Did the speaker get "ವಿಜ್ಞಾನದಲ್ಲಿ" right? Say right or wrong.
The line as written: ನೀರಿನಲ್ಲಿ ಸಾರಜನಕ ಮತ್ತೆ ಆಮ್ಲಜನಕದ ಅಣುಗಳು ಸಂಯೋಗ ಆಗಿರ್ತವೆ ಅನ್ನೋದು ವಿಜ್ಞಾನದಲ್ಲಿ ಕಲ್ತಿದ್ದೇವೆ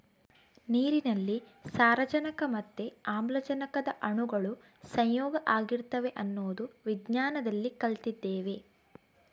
right